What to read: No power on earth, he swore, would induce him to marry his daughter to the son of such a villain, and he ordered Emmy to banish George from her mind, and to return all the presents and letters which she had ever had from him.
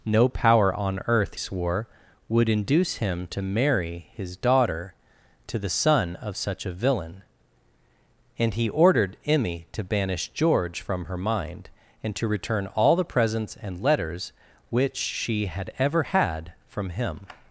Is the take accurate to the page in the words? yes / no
no